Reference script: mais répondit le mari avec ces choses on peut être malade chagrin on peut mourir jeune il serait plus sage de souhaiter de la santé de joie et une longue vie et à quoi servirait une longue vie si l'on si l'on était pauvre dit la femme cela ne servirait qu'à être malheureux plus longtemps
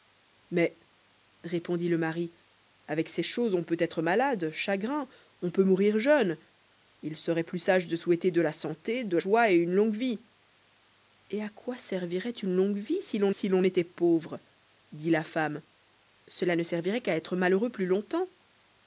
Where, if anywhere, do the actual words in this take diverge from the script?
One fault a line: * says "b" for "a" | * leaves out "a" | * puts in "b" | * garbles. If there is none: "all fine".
all fine